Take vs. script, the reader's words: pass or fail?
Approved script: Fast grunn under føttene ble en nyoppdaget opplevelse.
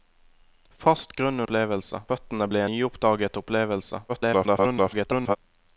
fail